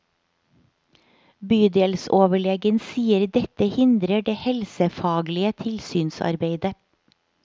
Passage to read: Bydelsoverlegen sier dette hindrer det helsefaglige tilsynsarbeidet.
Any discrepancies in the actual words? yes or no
no